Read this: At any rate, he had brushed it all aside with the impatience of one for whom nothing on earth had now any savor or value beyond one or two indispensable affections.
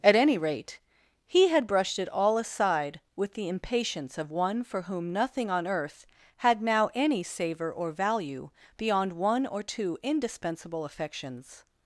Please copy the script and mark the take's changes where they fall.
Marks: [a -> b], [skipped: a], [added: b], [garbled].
At any rate, he had brushed it all aside with the impatience of one for whom nothing on earth had now any savor or value beyond one or two indispensable affections.